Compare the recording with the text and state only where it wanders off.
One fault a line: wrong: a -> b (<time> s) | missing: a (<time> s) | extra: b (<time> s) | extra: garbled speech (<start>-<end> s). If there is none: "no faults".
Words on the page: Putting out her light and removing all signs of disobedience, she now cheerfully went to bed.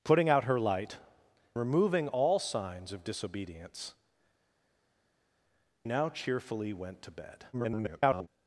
missing: and (1.0 s)
missing: she (3.9 s)
extra: garbled speech (7.5-8.3 s)